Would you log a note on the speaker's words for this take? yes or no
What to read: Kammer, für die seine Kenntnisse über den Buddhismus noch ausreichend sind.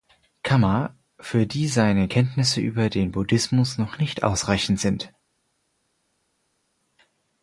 yes